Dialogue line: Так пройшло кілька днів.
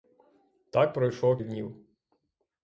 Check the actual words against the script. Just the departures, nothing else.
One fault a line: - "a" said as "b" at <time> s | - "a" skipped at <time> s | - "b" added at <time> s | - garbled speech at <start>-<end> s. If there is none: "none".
- "кілька" skipped at 1.4 s